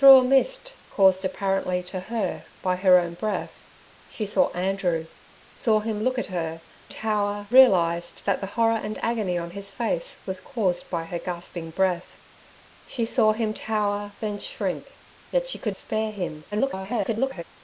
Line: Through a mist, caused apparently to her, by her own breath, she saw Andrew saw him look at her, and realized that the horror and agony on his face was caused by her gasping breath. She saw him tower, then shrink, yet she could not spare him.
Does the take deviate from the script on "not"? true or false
true